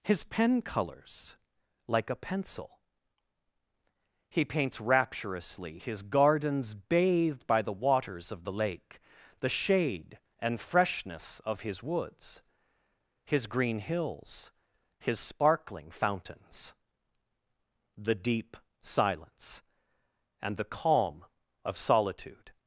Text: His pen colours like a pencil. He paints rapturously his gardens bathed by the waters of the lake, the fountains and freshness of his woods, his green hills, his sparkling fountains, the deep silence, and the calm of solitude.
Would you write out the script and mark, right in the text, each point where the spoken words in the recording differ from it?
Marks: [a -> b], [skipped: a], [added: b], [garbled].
His pen colours like a pencil. He paints rapturously his gardens bathed by the waters of the lake, the [fountains -> shade] and freshness of his woods, his green hills, his sparkling fountains, the deep silence, and the calm of solitude.